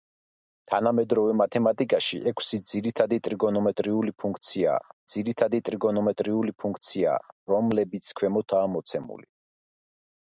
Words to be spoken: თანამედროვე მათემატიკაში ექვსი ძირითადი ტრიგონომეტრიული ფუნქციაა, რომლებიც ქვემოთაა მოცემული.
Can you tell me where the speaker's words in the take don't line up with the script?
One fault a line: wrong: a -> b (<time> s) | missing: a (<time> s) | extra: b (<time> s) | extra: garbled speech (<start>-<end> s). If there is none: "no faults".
extra: ძირითადი ტრიგონომეტრიული ფუნქციაა (5.1 s)